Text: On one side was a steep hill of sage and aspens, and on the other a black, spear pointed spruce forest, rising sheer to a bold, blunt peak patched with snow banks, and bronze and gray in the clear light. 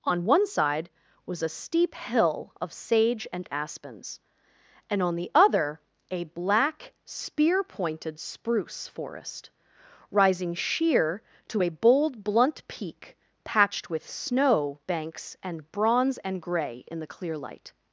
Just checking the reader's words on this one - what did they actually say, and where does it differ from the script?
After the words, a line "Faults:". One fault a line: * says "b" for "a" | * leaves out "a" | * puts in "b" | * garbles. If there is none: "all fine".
On one side was a steep hill of sage and aspens, and on the other a black, spear pointed spruce forest, rising sheer to a bold, blunt peak patched with snow banks, and bronze and gray in the clear light.
Faults:
all fine